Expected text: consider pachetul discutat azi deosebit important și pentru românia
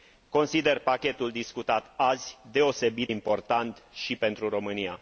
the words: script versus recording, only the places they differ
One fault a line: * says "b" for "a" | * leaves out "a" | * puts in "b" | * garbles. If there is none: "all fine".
all fine